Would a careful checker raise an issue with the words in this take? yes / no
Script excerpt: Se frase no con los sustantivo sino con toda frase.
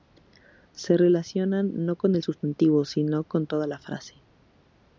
yes